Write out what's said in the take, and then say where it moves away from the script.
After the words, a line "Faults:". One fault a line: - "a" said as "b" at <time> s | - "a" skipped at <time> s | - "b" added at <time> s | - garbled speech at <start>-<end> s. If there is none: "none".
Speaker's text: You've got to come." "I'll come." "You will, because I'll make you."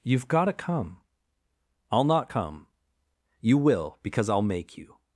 You've got to come." "I'll not come." "You will, because I'll make you."
Faults:
- "not" added at 2.0 s